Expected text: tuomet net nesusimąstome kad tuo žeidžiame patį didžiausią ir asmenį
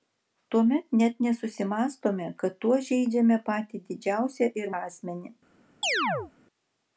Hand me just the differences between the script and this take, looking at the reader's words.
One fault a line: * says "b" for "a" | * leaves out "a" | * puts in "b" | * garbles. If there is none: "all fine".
all fine